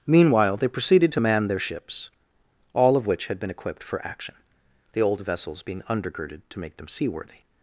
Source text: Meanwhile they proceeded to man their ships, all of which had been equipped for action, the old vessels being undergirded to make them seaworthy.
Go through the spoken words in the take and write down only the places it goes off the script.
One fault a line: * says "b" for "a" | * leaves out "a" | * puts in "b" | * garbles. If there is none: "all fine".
all fine